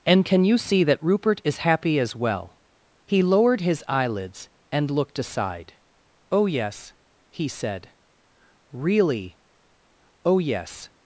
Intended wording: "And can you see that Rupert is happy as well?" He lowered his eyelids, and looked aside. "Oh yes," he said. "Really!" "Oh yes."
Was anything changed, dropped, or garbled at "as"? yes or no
no